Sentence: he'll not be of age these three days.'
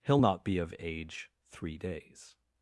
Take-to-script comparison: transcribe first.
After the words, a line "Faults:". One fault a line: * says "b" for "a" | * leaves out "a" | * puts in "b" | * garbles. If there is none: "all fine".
he'll not be of age three days.'
Faults:
* leaves out "these"